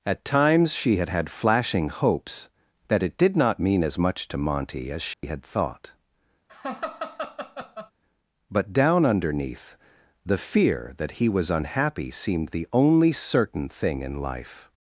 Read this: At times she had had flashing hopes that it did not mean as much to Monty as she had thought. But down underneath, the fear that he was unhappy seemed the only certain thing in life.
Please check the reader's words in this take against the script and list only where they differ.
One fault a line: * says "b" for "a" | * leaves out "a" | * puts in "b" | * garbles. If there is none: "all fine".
all fine